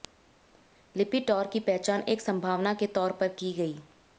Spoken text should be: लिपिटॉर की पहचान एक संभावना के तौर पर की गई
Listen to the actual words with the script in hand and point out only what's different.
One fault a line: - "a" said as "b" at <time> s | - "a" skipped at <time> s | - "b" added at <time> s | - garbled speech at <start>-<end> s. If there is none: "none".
none